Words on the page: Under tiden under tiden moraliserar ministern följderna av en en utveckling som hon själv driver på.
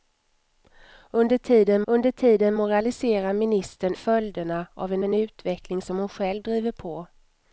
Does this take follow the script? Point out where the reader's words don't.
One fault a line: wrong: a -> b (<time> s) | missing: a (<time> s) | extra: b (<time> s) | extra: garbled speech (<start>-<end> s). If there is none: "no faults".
no faults